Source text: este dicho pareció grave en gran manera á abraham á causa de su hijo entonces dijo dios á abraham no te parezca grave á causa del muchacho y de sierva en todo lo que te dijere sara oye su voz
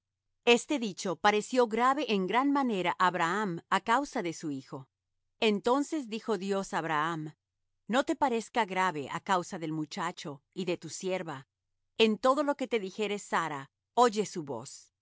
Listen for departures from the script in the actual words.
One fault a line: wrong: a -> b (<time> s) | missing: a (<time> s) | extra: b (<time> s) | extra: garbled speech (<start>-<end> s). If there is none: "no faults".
extra: tu (10.8 s)